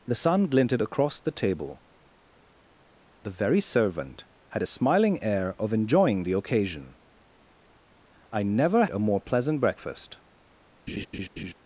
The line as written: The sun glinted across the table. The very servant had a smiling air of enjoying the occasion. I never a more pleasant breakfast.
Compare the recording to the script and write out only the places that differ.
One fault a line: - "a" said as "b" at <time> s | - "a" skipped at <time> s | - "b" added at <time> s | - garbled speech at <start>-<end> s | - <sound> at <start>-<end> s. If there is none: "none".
- laugh at 10.9-11.5 s